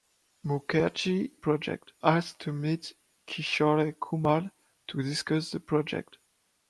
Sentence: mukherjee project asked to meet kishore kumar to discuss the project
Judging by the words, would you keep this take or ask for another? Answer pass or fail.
pass